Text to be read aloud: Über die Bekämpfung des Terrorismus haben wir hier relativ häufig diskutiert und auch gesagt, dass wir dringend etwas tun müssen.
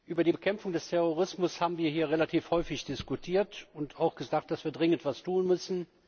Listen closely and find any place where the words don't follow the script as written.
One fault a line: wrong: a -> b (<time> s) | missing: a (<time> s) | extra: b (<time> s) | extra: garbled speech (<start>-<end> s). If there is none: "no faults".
no faults